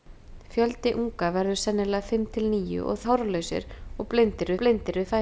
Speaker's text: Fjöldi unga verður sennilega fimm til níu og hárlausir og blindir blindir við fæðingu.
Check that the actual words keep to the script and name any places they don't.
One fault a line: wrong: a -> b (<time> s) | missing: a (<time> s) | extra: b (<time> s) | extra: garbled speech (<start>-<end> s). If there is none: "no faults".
no faults